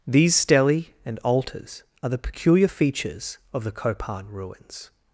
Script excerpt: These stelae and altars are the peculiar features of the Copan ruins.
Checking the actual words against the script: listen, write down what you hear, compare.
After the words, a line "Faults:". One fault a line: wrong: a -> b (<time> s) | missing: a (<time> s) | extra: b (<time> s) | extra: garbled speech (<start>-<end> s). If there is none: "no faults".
These stelae and altars are the peculiar features of the Copan ruins.
Faults:
no faults